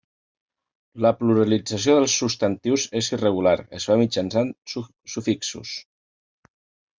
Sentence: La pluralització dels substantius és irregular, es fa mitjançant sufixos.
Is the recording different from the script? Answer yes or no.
no